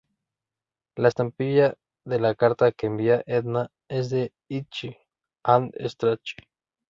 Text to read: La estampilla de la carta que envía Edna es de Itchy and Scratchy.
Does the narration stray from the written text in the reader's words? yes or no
no